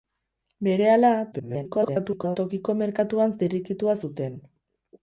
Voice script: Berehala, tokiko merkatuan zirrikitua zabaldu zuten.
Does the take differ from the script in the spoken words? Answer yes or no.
yes